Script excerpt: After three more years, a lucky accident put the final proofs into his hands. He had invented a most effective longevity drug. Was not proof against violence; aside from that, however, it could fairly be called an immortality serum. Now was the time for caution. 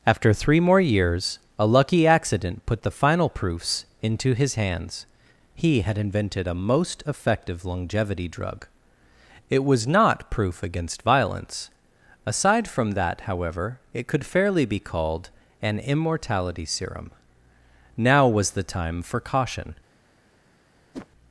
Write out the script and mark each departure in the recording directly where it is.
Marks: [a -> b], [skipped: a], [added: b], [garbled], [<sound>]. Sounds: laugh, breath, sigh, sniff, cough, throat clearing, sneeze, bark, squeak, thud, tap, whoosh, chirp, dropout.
After three more years, a lucky accident put the final proofs into his hands. He had invented a most effective longevity drug. [added: It] Was not proof against violence; aside from that, however, it could fairly be called an immortality serum. Now was the time for caution. [whoosh]